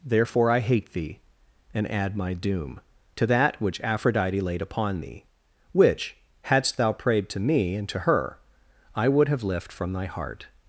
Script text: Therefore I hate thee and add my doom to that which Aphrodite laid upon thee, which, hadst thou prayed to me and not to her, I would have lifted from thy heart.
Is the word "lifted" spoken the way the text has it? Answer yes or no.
no